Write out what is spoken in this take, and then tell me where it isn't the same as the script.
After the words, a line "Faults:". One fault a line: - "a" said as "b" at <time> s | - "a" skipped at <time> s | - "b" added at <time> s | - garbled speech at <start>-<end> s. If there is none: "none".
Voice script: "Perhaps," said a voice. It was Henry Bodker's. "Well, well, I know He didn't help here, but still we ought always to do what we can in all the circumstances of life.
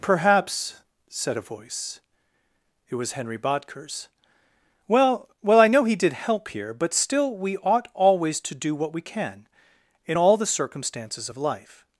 "Perhaps," said a voice. It was Henry Bodker's. "Well, well, I know He did help here, but still we ought always to do what we can in all the circumstances of life.
Faults:
- "didn't" said as "did" at 6.0 s